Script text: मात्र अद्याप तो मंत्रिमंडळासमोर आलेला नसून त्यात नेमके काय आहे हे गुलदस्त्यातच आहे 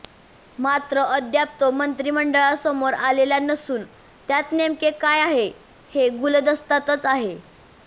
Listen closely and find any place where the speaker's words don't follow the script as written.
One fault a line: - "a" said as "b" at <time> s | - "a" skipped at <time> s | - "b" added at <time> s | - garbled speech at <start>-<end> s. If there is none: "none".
none